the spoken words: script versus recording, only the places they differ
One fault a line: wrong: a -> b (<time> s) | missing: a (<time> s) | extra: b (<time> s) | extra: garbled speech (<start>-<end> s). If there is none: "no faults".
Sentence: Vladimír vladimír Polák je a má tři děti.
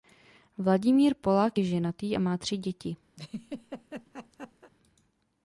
missing: vladimír (1.1 s)
extra: ženatý (1.6 s)